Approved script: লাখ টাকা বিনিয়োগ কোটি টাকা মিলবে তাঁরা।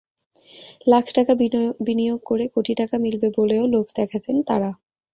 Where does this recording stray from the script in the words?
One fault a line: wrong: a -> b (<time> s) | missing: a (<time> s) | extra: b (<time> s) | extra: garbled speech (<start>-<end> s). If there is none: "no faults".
extra: করে (2.2 s)
extra: বলেও লোভ দেখাতেন (3.4 s)